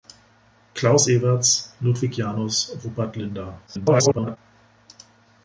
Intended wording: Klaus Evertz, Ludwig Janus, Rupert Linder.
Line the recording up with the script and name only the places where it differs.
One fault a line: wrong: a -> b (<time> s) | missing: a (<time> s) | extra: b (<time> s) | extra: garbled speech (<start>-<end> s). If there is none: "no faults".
extra: garbled speech (3.7-4.4 s)